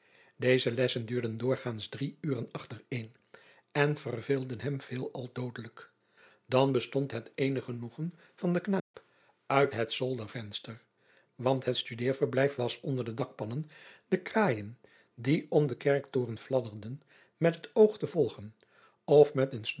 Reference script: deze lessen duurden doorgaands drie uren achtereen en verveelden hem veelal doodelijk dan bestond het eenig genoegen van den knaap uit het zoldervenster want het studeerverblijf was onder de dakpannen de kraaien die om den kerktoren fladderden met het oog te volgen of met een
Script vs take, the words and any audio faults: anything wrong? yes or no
yes